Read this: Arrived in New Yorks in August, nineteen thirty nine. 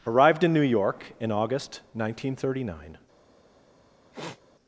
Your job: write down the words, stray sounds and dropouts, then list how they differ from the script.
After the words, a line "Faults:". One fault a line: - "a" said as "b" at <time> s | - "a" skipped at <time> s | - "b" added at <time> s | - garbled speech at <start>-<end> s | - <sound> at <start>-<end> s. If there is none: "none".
Arrived in New York in August, nineteen thirty nine.
Faults:
- "Yorks" said as "York" at 0.6 s
- sniff at 4.1-4.4 s